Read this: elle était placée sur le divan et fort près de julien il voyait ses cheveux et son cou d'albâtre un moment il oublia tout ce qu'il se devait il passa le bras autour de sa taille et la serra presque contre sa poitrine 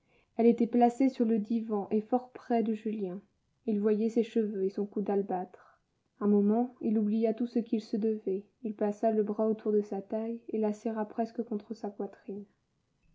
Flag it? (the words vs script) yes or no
no